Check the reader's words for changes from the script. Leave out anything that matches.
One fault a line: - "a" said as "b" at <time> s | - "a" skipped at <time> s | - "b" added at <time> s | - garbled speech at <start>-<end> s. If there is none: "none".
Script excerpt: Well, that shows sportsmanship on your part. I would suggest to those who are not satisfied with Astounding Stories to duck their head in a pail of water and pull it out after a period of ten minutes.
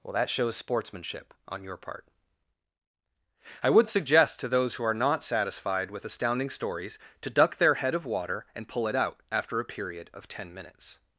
- "in a pail" skipped at 8.0 s